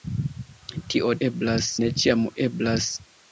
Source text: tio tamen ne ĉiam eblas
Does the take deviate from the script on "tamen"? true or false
true